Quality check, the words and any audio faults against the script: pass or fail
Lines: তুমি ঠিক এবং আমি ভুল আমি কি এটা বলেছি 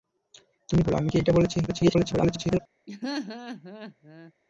fail